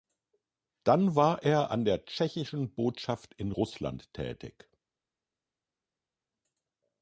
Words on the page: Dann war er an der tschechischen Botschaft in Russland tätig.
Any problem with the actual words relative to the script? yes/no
no